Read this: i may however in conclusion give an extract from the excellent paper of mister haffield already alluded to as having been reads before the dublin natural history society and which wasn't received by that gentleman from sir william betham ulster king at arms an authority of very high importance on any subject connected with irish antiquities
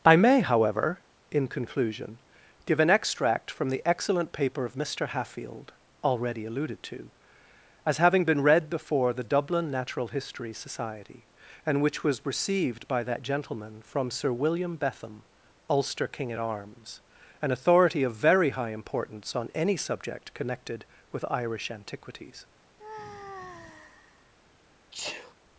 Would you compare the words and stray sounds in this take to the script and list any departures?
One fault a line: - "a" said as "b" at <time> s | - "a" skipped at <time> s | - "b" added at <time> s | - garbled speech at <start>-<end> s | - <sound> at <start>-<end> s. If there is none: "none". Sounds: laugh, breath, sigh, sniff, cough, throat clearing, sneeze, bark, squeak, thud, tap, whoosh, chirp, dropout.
- "reads" said as "read" at 8.4 s
- "wasn't" said as "was" at 12.0 s
- sigh at 22.8-24.3 s
- sneeze at 24.9-25.3 s